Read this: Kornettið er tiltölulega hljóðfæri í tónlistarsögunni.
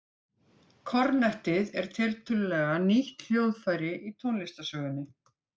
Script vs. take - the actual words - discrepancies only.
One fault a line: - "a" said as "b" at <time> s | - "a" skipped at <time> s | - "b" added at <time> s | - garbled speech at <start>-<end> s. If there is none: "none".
- "nýtt" added at 2.9 s